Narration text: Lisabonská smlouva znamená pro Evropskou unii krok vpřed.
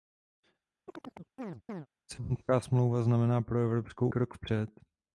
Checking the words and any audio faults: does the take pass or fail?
fail